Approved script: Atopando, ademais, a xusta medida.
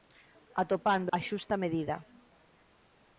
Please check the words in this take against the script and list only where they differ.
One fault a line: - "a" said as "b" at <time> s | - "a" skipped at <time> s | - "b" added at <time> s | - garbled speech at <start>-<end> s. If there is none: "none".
- "ademais" skipped at 1.1 s